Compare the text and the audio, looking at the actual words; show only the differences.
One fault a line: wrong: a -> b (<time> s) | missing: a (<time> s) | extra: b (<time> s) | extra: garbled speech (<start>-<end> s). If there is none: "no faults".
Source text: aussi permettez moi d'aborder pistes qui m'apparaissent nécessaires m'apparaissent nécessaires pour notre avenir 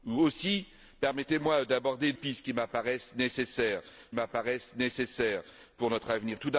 no faults